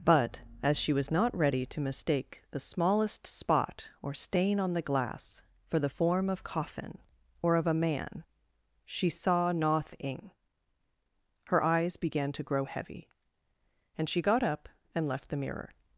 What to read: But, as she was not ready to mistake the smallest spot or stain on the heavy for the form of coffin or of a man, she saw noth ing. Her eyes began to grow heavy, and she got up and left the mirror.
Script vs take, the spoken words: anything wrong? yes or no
yes